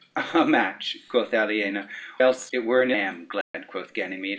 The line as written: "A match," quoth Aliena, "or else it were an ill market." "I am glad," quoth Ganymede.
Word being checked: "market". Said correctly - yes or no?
no